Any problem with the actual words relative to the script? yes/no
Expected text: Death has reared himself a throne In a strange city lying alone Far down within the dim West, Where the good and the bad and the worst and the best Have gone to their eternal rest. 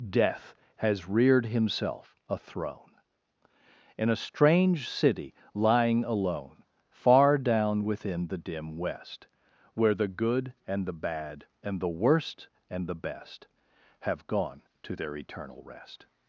no